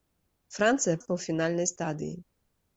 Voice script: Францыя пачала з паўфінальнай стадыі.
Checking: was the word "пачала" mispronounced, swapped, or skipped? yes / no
yes